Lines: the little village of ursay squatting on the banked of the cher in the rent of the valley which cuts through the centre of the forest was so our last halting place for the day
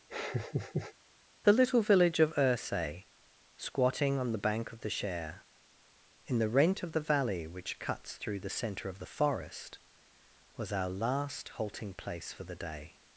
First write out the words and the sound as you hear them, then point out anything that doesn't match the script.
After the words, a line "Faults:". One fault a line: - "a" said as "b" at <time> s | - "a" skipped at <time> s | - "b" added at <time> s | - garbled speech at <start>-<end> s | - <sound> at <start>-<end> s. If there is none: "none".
the little village of ursay squatting on the bank of the cher in the rent of the valley which cuts through the centre of the forest was our last halting place for the day
Faults:
- laugh at 0.1-0.9 s
- "banked" said as "bank" at 4.5 s
- "so" skipped at 10.7 s